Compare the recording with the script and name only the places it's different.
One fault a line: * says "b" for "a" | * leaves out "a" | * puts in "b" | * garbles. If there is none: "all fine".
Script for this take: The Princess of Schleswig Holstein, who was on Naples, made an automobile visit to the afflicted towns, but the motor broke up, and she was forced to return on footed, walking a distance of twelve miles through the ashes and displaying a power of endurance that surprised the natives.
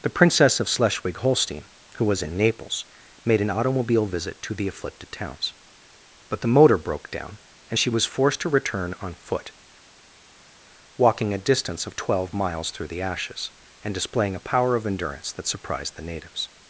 * says "in" for "on"
* says "down" for "up"
* says "foot" for "footed"